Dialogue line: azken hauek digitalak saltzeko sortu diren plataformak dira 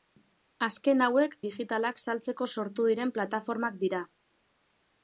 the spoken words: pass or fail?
pass